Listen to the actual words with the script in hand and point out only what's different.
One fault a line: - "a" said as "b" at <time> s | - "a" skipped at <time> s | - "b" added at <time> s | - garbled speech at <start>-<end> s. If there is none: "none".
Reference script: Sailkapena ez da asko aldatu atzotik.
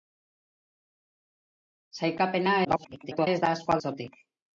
- garbled speech at 2.6-3.3 s
- "aldatu" skipped at 3.8 s